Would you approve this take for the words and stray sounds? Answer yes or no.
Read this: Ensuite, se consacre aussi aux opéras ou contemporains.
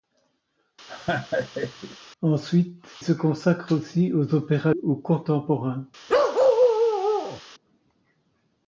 no